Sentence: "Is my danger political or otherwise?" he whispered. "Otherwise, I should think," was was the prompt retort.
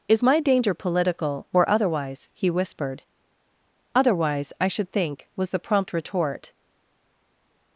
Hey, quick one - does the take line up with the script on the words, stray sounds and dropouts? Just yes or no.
no